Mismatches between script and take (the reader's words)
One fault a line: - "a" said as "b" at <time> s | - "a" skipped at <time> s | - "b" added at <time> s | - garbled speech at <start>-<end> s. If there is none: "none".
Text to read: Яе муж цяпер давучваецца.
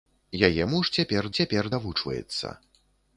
- "цяпер" added at 1.4 s